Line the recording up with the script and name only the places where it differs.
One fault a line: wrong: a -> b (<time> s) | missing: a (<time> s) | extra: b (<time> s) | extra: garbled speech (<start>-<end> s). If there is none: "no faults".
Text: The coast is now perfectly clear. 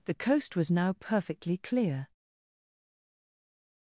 wrong: is -> was (0.6 s)